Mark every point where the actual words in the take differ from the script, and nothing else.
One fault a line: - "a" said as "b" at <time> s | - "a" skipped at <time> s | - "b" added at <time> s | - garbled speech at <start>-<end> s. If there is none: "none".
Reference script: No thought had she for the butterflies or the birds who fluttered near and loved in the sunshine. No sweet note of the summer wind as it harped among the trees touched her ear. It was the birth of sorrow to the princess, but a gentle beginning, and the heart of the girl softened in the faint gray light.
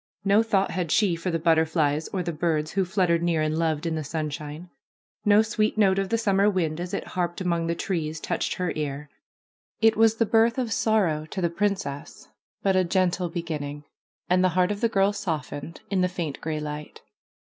none